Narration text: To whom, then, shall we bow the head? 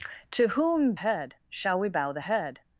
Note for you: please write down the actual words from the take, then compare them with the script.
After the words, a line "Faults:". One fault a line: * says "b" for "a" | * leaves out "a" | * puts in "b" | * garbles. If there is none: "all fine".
To whom, head, shall we bow the head?
Faults:
* says "head" for "then"